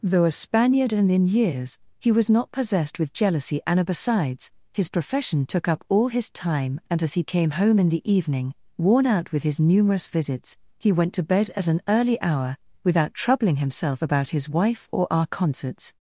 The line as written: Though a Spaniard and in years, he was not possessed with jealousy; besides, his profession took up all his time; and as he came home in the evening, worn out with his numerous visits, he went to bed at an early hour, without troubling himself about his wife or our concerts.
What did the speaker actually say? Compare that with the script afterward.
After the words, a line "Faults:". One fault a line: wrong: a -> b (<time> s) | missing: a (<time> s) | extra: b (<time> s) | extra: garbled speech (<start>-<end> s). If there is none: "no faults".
Though a Spaniard and in years, he was not possessed with jealousy; and besides, his profession took up all his time; and as he came home in the evening, worn out with his numerous visits, he went to bed at an early hour, without troubling himself about his wife or our concerts.
Faults:
extra: and (3.7 s)